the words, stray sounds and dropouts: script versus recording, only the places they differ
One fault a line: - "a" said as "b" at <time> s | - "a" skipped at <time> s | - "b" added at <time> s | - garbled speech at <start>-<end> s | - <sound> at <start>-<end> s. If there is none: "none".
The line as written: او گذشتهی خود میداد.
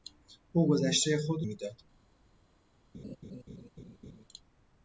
- laugh at 2.9-4.3 s